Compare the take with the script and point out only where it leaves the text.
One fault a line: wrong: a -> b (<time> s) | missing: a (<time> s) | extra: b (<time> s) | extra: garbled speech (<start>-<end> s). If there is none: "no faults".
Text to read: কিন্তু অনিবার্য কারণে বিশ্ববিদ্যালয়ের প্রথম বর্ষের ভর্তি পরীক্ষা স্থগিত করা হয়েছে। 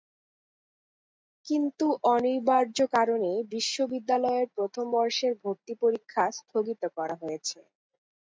no faults